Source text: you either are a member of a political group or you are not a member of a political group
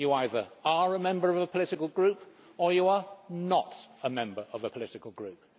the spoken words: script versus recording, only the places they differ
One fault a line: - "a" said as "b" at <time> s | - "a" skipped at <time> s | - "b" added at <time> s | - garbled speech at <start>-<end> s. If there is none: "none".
none